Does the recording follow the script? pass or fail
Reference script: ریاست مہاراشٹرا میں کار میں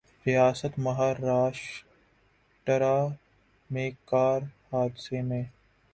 fail